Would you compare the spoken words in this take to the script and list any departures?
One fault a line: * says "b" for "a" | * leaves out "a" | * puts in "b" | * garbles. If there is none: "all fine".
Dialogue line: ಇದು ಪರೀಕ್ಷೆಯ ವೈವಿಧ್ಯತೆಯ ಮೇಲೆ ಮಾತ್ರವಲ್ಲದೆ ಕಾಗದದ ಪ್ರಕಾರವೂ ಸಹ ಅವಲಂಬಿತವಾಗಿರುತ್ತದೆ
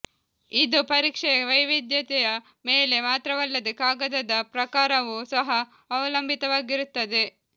all fine